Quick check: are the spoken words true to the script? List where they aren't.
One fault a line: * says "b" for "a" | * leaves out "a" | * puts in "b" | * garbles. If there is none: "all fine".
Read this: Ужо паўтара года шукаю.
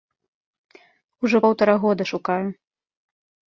all fine